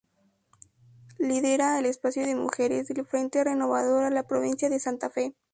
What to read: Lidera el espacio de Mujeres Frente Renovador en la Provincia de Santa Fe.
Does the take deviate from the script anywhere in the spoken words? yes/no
yes